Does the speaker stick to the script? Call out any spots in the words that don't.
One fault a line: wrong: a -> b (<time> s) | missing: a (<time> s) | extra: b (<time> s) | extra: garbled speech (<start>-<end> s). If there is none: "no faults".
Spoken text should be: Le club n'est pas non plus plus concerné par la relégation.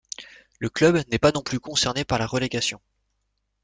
missing: plus (1.6 s)